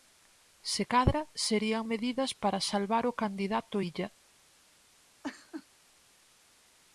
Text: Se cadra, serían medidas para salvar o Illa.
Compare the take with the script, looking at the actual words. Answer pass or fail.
fail